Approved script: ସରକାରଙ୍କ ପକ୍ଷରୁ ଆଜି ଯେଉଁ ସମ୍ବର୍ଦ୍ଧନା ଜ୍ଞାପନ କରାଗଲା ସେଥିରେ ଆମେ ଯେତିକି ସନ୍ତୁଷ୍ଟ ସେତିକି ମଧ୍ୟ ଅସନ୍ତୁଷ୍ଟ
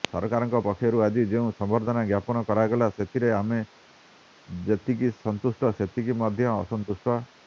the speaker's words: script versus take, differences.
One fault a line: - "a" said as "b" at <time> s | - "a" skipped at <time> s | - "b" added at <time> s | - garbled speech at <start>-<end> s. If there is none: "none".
none